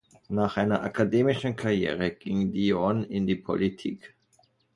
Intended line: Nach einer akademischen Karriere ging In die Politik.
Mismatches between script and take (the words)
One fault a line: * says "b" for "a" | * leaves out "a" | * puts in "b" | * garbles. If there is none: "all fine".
* puts in "Dion"